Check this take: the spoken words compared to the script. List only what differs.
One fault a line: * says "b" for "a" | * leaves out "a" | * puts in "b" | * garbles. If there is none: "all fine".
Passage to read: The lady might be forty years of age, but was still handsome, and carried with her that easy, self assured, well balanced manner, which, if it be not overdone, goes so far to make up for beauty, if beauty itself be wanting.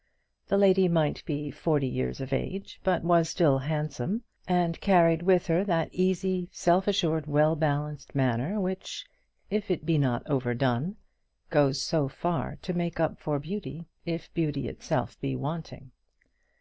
all fine